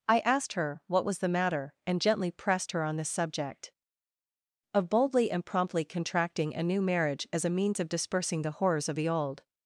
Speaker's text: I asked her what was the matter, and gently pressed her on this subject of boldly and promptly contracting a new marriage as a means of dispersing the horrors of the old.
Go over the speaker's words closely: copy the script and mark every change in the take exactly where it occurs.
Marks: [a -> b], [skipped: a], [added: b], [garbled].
I asked her what was the matter, and gently pressed her on this subject of boldly and promptly contracting a new marriage as a means of dispersing the horrors of the old.